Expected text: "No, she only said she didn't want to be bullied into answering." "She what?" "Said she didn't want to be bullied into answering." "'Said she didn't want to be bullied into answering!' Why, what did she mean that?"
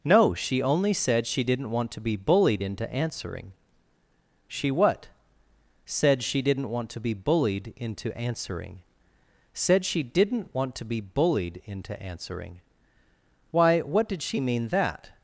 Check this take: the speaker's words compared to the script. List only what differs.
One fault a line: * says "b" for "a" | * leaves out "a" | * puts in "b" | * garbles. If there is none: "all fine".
all fine